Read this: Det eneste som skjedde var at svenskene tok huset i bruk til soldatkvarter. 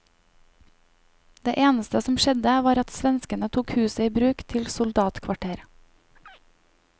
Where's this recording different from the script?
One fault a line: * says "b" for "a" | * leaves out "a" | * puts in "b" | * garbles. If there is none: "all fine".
all fine